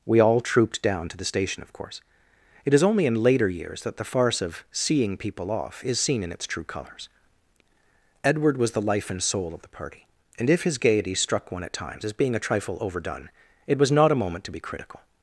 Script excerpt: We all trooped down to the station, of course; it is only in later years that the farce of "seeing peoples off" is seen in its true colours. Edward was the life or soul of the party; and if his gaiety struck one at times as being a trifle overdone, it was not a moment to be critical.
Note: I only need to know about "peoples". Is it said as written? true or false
false